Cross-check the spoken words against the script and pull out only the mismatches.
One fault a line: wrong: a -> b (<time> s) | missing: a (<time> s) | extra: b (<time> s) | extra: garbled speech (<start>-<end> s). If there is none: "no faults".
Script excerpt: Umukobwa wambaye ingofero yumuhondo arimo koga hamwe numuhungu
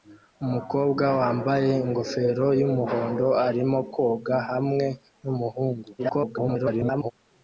extra: garbled speech (6.0-7.1 s)